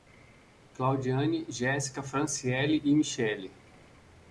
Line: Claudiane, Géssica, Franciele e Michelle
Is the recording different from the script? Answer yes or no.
no